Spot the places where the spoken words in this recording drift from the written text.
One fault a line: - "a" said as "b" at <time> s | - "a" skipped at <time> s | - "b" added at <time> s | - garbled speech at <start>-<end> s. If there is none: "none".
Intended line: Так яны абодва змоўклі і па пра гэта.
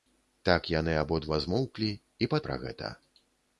none